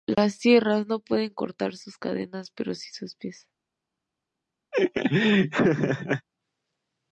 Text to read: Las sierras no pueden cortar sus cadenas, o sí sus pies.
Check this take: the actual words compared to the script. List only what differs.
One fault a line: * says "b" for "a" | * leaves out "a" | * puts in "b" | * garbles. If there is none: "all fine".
* says "pero" for "o"